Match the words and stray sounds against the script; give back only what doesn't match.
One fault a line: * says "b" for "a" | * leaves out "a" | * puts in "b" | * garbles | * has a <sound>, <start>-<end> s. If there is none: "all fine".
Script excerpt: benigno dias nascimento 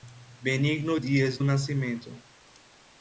all fine